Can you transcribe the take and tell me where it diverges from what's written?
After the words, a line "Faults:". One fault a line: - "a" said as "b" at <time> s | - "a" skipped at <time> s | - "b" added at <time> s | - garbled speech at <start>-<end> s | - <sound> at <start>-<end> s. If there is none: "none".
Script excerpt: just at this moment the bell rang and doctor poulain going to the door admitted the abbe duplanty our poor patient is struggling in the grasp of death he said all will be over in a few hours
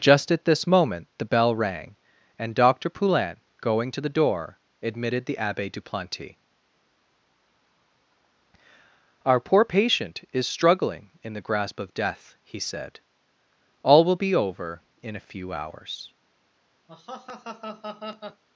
just at this moment the bell rang and doctor poulain going to the door admitted the abbe duplanty our poor patient is struggling in the grasp of death he said all will be over in a few hours
Faults:
- laugh at 16.9-18.4 s